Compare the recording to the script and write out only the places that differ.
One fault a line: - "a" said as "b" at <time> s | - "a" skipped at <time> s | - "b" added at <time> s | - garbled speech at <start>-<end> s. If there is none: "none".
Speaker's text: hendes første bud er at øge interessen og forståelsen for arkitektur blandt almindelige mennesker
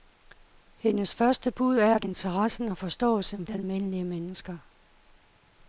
- "øge" skipped at 2.0 s
- "for arkitektur blandt" skipped at 3.5 s